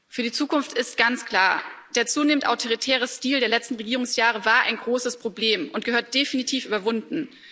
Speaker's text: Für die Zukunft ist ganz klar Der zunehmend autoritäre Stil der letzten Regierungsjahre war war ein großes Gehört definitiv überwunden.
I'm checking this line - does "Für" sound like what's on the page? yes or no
yes